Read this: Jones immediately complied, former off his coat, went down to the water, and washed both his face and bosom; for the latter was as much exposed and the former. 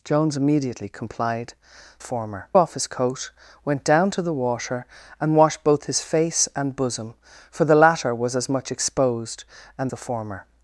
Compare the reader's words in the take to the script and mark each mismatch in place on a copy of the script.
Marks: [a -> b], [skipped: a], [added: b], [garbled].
Jones immediately complied, former off his coat, went down to the water, and washed both his face and bosom; for the latter was as much exposed and the former.